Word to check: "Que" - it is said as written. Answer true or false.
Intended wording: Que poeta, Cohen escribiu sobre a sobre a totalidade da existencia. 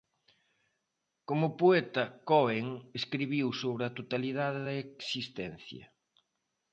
false